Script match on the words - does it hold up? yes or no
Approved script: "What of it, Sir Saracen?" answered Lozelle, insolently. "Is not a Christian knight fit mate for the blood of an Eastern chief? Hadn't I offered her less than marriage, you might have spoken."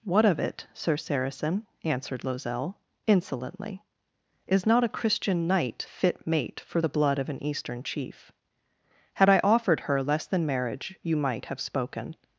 no